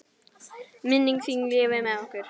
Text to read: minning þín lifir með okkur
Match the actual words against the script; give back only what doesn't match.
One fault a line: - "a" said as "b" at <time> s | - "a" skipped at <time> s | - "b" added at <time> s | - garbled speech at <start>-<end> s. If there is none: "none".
none